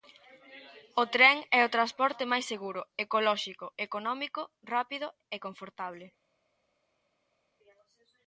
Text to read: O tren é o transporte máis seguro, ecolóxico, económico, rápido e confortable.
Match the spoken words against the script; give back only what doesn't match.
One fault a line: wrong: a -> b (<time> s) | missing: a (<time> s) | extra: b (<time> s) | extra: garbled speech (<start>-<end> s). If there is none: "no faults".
no faults